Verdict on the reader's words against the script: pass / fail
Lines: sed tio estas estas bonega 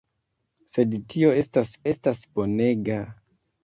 pass